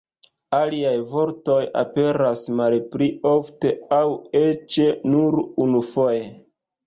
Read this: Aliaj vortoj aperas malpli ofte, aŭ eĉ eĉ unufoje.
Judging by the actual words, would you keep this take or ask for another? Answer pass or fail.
fail